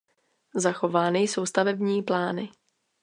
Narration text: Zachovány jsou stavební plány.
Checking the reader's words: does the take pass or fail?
pass